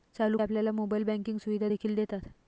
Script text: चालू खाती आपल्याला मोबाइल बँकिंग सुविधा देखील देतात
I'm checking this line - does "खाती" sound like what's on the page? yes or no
no